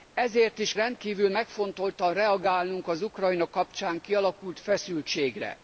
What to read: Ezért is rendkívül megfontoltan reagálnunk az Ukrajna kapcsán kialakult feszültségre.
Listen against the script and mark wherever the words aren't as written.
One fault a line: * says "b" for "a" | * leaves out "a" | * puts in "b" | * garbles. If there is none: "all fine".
all fine